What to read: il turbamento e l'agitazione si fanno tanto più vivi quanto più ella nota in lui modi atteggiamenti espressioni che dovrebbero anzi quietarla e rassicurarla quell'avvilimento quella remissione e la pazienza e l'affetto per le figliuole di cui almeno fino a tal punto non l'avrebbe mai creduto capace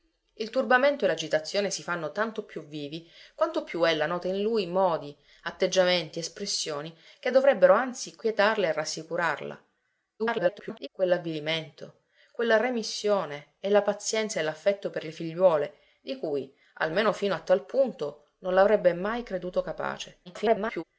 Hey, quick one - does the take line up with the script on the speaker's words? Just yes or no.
no